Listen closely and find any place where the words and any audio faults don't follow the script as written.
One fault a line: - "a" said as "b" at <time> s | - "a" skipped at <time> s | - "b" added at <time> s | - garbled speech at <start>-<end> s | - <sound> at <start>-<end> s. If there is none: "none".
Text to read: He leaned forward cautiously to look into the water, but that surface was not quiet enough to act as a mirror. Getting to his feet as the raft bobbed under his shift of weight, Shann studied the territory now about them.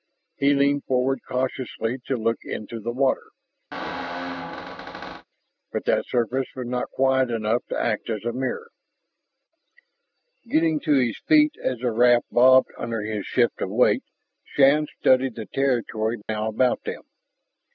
- squeak at 3.7-5.2 s
- dropout at 16.2-16.3 s